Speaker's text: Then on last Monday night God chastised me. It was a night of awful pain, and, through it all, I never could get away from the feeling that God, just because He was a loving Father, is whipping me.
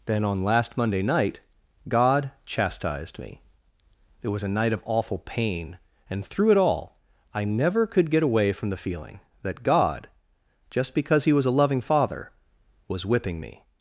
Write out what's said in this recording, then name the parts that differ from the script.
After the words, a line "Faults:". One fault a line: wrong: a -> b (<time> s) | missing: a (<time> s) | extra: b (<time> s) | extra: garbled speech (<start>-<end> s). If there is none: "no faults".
Then on last Monday night God chastised me. It was a night of awful pain, and, through it all, I never could get away from the feeling that God, just because He was a loving Father, was whipping me.
Faults:
wrong: is -> was (12.9 s)